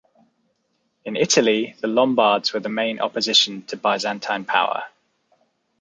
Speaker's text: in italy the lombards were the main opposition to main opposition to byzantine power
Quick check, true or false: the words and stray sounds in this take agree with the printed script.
false